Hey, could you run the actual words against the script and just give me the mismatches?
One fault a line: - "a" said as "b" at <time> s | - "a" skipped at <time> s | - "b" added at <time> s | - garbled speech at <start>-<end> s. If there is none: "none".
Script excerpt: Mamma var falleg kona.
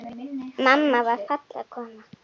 none